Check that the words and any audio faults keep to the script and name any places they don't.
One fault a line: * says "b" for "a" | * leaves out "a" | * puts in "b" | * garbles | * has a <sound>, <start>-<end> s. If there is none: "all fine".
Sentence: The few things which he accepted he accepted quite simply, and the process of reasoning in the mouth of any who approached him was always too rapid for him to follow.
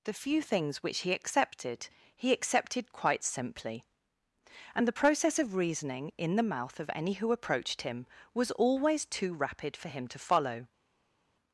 all fine